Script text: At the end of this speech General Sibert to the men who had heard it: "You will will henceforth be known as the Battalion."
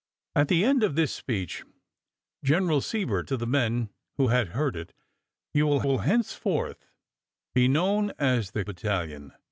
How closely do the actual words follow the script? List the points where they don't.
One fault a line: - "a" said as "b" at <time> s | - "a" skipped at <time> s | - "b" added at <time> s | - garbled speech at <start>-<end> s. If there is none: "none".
none